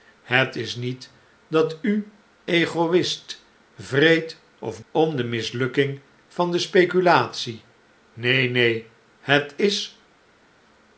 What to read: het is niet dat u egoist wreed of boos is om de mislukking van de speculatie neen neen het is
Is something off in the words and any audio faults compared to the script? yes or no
yes